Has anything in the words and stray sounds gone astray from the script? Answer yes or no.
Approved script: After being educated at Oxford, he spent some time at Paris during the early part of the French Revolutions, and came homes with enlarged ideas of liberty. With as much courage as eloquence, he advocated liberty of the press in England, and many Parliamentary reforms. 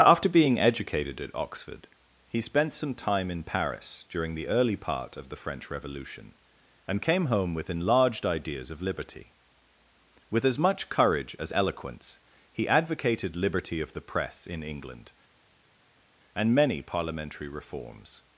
yes